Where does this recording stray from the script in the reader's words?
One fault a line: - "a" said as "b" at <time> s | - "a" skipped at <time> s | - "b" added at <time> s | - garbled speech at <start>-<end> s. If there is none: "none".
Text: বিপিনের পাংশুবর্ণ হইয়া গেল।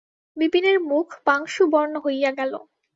- "মুখ" added at 0.9 s